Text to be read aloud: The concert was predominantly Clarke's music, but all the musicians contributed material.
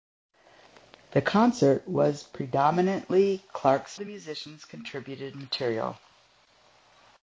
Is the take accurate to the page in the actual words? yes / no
no